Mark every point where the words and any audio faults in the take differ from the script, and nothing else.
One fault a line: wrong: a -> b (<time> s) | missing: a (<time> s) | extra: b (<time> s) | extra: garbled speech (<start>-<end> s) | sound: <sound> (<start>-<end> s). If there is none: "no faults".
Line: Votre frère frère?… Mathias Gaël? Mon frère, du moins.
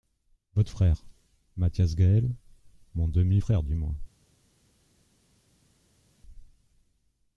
missing: frère (1.1 s)
extra: demi (3.1 s)